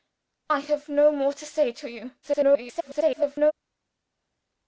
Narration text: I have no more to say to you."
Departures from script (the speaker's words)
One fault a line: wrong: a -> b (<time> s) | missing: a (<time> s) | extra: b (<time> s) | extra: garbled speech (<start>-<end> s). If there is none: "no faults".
extra: garbled speech (2.2-3.5 s)